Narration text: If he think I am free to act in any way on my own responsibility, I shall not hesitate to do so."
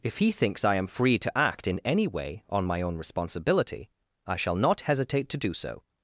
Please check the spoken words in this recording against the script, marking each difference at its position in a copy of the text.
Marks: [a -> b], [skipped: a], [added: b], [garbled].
If he [think -> thinks] I am free to act in any way on my own responsibility, I shall not hesitate to do so."